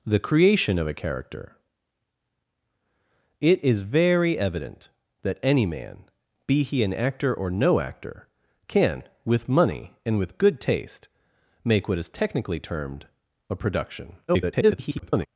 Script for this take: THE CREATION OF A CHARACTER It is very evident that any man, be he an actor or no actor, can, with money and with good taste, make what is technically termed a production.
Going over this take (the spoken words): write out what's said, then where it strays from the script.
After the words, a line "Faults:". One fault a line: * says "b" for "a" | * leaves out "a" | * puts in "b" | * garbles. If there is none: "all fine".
THE CREATION OF A CHARACTER It is very evident that any man, be he an actor or no actor, can, with money and with good taste, make what is technically termed a production. [garbled]
Faults:
* garbles